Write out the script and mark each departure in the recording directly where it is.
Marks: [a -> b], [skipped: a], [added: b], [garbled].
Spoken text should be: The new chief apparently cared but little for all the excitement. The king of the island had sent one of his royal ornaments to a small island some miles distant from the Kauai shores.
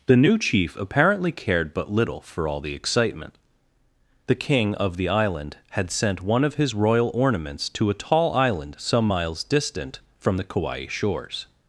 The new chief apparently cared but little for all the excitement. The king of the island had sent one of his royal ornaments to a [small -> tall] island some miles distant from the Kauai shores.